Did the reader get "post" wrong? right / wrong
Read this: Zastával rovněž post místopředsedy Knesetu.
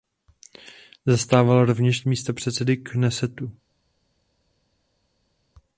wrong